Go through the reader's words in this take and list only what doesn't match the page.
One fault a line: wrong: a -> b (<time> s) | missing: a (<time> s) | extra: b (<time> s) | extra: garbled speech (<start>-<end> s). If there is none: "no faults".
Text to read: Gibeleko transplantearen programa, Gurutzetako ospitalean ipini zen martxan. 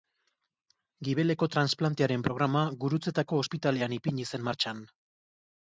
no faults